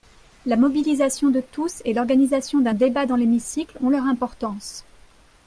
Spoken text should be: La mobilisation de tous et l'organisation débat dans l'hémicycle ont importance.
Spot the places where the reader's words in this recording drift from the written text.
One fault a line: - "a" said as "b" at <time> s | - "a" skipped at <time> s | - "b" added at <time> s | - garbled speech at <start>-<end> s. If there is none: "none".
- "d'un" added at 2.6 s
- "leur" added at 3.9 s